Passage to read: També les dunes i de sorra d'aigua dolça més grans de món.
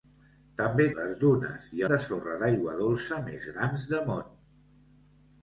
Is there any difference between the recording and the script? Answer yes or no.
no